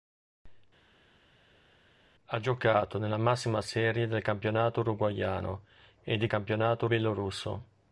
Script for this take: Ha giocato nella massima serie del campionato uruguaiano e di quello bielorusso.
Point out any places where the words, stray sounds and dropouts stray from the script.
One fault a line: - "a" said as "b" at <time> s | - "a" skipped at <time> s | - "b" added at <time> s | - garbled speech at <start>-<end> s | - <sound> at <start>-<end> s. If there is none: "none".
- "quello" said as "campionato" at 6.3 s